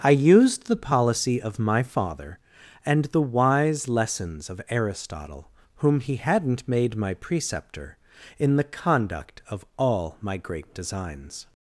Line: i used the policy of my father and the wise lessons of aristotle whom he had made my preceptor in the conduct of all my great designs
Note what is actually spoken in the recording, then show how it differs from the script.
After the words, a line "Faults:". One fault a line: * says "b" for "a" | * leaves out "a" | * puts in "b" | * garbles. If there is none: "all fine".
i used the policy of my father and the wise lessons of aristotle whom he hadn't made my preceptor in the conduct of all my great designs
Faults:
* says "hadn't" for "had"